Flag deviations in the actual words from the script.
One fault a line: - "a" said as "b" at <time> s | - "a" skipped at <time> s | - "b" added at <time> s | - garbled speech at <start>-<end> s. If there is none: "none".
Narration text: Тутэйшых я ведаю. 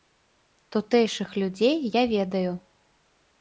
- "людзей" added at 1.4 s